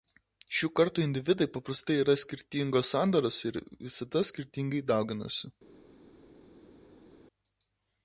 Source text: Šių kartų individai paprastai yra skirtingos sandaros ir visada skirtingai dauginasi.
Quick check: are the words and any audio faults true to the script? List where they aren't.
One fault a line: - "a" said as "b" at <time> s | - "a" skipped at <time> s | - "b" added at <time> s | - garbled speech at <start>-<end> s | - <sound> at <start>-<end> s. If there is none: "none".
none